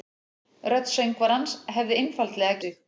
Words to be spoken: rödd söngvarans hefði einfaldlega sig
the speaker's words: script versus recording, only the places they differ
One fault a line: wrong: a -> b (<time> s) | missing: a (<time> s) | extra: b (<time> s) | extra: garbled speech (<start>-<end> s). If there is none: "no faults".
no faults